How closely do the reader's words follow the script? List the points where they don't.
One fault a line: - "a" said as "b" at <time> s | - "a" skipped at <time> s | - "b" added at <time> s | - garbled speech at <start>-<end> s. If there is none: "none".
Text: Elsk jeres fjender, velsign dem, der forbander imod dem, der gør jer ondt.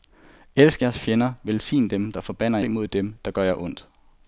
none